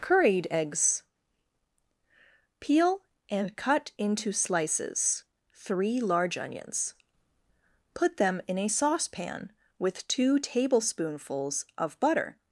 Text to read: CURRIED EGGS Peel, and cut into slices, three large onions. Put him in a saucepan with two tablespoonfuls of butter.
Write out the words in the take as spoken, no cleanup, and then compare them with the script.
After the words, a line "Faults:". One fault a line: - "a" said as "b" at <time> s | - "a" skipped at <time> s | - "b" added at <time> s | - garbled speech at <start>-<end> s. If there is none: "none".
CURRIED EGGS Peel, and cut into slices, three large onions. Put them in a saucepan with two tablespoonfuls of butter.
Faults:
- "him" said as "them" at 8.2 s